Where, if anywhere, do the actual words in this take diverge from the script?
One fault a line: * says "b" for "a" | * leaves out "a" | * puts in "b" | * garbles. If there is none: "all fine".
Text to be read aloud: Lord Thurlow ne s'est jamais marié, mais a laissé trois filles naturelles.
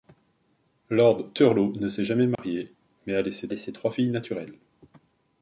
* puts in "laissé"